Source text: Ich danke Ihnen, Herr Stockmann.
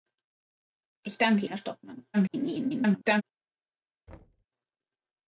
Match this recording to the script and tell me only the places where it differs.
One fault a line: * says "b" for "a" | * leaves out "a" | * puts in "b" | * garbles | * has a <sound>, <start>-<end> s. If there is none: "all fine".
* leaves out "Ihnen"
* garbles
* has a thud, 4.1-4.5 s